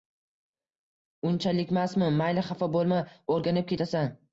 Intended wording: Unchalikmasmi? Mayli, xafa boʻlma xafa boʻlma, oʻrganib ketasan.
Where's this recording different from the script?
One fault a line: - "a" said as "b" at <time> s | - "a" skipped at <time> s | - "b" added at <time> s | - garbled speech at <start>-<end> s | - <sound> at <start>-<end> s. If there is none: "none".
- "xafa boʻlma" skipped at 3.1 s